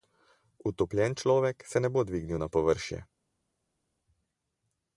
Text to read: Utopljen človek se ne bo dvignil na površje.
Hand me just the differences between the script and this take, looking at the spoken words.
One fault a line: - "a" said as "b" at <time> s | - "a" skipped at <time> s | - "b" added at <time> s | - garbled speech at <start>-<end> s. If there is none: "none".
none